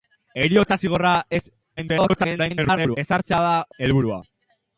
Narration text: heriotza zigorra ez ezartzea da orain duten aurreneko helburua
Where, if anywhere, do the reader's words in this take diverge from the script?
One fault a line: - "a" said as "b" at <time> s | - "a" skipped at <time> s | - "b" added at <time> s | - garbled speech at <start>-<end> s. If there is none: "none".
- garbled speech at 1.8-3.0 s
- "orain duten aurreneko" skipped at 3.5 s